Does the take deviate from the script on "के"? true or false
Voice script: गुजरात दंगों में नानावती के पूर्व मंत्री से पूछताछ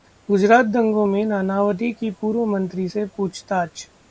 true